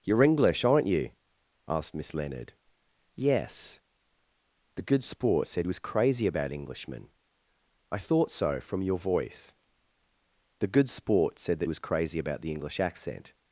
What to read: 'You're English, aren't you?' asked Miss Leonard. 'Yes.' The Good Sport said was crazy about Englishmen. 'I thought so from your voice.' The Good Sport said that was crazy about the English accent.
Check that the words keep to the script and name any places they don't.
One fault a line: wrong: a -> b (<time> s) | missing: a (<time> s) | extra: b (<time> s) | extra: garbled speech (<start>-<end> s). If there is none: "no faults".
no faults